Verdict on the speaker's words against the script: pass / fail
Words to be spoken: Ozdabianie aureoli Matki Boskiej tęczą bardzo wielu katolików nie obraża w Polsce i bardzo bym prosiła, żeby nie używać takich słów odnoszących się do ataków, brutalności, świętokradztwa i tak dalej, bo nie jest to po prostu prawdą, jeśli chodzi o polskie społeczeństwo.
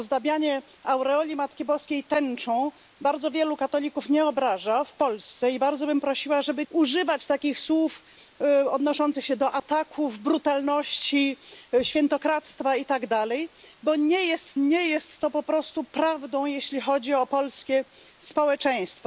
fail